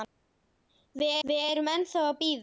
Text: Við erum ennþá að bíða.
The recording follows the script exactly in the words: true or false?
false